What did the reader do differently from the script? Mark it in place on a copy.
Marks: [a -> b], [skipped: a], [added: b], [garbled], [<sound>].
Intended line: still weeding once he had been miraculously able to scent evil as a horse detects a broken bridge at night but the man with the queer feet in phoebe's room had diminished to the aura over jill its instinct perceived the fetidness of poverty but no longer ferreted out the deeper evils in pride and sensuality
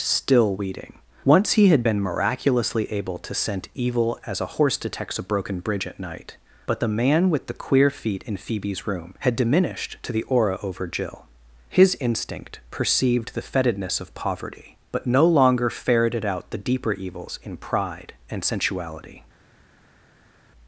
still weeding once he had been miraculously able to scent evil as a horse detects a broken bridge at night but the man with the queer feet in phoebe's room had diminished to the aura over jill [its -> his] instinct perceived the fetidness of poverty but no longer ferreted out the deeper evils in pride and sensuality